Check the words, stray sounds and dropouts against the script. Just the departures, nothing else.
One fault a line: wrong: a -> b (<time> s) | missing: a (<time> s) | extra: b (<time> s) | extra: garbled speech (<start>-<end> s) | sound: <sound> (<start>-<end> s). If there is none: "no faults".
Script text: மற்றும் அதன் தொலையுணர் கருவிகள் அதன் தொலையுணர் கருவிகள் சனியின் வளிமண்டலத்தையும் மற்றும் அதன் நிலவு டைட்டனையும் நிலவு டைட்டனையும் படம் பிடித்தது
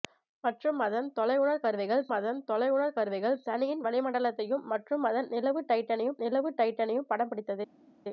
no faults